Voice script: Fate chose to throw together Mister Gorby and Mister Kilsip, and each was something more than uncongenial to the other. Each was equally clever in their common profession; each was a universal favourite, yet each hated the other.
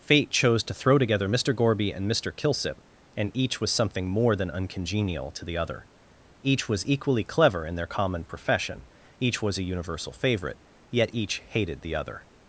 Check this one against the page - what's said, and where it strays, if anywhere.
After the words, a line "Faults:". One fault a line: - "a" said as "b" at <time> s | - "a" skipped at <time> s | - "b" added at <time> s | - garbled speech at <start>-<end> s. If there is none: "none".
Fate chose to throw together Mister Gorby and Mister Kilsip, and each was something more than uncongenial to the other. Each was equally clever in their common profession; each was a universal favourite, yet each hated the other.
Faults:
none